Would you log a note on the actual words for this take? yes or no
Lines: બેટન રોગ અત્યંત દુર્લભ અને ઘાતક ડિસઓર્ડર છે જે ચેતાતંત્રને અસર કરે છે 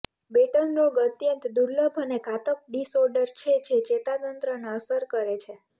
no